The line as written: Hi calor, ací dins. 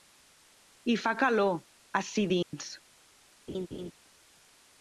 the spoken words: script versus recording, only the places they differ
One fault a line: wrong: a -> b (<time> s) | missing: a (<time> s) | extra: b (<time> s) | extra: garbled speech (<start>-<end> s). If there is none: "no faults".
extra: fa (1.0 s)